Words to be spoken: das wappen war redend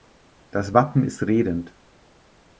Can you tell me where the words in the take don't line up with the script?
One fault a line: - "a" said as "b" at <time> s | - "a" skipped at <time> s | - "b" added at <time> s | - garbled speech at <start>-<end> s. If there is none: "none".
- "war" said as "ist" at 1.0 s